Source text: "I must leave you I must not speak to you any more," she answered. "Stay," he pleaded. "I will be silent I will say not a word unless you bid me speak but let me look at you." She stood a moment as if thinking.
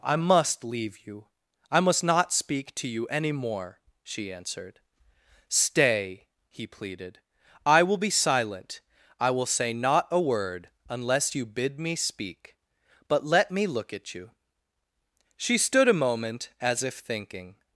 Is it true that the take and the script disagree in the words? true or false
false